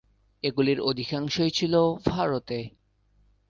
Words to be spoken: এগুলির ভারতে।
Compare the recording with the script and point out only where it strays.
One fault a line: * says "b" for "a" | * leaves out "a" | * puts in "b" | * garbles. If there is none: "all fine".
* puts in "অধিকাংশই ছিল"